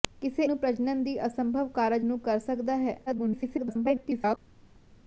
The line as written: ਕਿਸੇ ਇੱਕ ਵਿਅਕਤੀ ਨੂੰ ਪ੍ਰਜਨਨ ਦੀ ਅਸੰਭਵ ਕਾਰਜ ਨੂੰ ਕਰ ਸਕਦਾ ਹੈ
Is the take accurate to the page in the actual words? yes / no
no